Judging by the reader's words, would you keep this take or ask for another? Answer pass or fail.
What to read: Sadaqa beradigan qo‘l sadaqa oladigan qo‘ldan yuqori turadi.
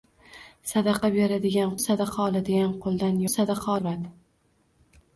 fail